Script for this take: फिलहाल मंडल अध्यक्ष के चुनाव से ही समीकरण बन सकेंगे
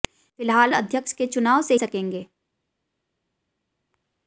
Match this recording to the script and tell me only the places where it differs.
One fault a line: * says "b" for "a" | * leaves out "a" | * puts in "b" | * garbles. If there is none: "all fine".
* leaves out "मंडल"
* leaves out "ही समीकरण बन"